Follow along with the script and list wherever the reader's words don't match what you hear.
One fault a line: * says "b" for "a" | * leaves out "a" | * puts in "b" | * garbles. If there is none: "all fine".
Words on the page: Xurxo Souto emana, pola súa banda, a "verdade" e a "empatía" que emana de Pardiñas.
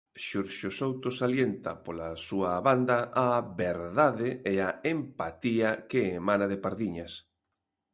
* says "salienta" for "emana"